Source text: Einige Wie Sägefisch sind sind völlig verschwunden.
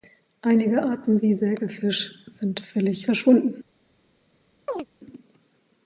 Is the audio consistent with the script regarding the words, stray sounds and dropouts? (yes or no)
no